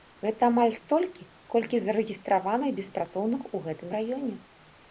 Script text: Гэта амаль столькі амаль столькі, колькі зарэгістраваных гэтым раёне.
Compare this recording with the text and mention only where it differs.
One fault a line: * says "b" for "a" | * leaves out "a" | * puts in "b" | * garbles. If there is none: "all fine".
* says "колькі зарэгістраваных беспрацоўных у" for "амаль столькі колькі зарэгістраваных"